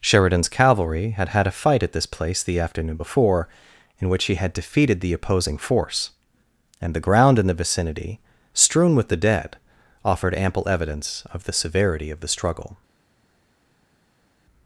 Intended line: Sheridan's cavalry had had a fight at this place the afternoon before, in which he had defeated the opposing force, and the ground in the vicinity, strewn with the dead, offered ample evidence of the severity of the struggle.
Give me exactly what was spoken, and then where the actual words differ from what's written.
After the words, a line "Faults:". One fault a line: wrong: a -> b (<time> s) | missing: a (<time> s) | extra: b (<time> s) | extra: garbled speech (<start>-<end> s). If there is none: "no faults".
Sheridan's cavalry had had a fight at this place the afternoon before, in which he had defeated the opposing force, and the ground in the vicinity, strewn with the dead, offered ample evidence of the severity of the struggle.
Faults:
no faults